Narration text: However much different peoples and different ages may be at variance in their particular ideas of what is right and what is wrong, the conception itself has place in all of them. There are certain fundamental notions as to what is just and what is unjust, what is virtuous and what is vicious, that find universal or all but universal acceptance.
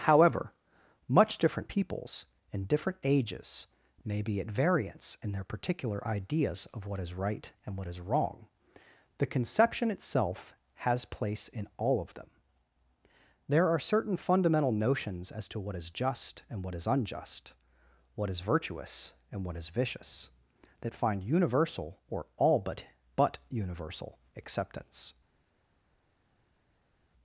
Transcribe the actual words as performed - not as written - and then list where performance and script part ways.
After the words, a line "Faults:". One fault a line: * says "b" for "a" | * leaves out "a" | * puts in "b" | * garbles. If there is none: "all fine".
However much different peoples and different ages may be at variance in their particular ideas of what is right and what is wrong, the conception itself has place in all of them. There are certain fundamental notions as to what is just and what is unjust, what is virtuous and what is vicious, that find universal or all but but universal acceptance.
Faults:
* puts in "but"